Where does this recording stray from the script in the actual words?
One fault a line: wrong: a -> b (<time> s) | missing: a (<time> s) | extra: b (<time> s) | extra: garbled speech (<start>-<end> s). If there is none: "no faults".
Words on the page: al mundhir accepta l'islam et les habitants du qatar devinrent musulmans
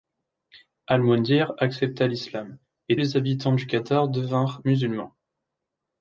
no faults